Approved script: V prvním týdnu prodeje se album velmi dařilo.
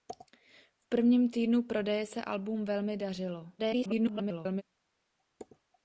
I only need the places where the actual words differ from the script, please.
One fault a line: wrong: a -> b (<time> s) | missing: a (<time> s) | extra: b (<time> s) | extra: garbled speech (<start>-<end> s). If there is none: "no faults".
extra: garbled speech (3.6-4.6 s)